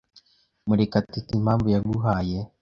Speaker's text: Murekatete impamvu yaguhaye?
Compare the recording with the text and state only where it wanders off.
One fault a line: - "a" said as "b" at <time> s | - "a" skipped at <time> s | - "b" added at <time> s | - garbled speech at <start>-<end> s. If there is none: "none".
none